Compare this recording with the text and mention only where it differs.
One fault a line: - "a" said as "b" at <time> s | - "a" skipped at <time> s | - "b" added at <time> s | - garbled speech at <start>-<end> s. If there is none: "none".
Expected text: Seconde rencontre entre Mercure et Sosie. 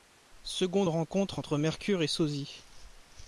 none